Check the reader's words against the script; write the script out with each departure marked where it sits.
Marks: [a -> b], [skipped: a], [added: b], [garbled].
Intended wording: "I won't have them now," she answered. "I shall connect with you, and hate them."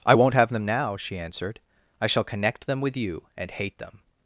"I won't have them now," she answered. "I shall connect [added: them] with you, and hate them."